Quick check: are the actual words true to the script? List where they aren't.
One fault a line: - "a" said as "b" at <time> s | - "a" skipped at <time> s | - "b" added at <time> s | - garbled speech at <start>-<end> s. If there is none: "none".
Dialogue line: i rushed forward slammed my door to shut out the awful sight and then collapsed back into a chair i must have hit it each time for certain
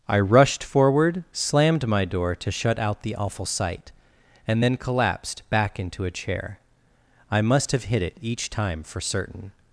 none